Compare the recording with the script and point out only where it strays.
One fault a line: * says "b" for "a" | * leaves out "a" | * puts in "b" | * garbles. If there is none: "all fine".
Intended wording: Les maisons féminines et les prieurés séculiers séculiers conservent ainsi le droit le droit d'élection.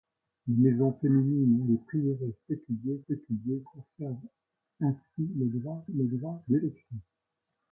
all fine